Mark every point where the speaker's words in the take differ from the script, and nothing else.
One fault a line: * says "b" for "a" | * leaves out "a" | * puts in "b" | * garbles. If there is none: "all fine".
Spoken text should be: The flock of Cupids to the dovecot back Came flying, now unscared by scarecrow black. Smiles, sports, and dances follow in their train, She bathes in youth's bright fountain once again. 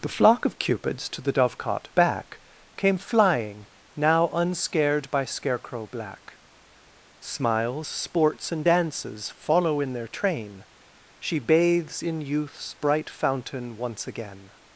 all fine